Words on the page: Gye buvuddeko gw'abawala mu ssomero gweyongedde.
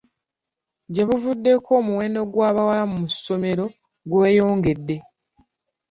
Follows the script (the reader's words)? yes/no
no